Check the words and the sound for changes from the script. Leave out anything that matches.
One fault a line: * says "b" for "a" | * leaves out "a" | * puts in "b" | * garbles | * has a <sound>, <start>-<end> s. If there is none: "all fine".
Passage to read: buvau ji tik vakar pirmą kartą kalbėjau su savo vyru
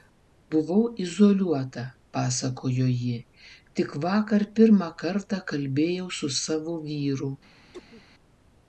* puts in "izoliuota pasakojo"
* has a cough, 7.7-8.0 s